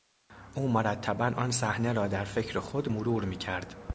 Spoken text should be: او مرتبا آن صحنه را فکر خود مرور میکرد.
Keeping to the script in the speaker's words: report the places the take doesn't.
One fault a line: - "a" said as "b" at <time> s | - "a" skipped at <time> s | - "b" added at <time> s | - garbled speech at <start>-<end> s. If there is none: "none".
- "در" added at 2.1 s